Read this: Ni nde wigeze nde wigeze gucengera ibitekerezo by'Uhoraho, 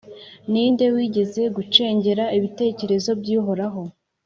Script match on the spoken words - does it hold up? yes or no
no